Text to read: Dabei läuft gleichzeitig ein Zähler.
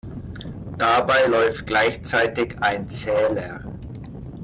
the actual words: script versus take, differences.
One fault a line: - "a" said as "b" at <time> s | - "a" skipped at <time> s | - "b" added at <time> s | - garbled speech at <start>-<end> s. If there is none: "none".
none